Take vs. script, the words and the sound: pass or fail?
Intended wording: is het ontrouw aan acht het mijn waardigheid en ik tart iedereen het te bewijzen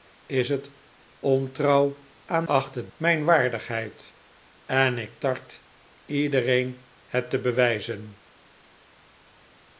pass